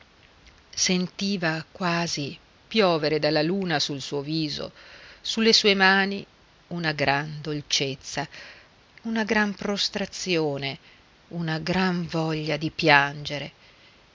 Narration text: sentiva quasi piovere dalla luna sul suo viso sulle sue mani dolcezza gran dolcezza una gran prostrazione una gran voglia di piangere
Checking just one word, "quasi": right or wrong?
right